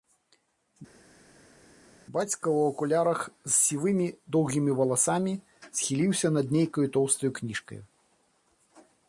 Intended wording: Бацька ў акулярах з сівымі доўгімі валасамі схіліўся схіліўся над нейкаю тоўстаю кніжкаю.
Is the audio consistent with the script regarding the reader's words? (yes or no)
no